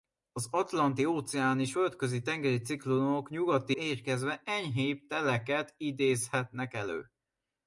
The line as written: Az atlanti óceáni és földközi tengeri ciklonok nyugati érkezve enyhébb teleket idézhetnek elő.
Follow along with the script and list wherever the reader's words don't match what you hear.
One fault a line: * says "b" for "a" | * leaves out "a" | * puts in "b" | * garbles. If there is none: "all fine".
all fine